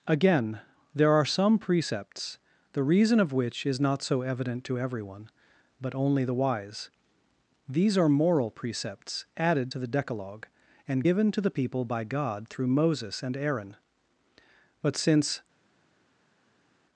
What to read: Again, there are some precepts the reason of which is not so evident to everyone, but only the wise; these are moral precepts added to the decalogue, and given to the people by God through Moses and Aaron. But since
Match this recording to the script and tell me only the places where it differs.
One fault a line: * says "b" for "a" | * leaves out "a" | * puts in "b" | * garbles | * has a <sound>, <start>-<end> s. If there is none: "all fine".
all fine